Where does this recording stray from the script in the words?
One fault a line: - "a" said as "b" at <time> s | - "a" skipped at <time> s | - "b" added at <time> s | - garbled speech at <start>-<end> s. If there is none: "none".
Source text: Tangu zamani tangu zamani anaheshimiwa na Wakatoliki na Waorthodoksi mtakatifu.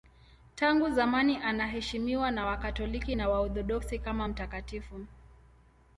- "tangu zamani" skipped at 1.4 s
- "kama" added at 4.0 s